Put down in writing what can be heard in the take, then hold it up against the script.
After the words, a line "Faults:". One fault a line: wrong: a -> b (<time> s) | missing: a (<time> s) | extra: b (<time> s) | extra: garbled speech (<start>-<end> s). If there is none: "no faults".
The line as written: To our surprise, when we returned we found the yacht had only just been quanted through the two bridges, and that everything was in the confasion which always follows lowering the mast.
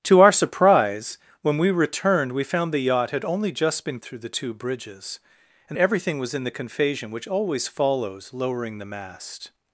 To our surprise, when we returned we found the yacht had only just been through the two bridges, and everything was in the confasion which always follows lowering the mast.
Faults:
missing: quanted (4.0 s)
missing: that (5.8 s)